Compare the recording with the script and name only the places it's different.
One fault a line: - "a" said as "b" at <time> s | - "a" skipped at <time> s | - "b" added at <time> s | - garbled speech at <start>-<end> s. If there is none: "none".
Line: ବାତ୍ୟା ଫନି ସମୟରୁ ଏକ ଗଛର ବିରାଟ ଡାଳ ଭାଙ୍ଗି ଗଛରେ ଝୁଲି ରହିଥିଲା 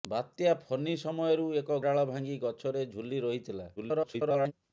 - "ଗଛର ବିରାଟ" skipped at 1.8 s
- garbled speech at 3.8-4.5 s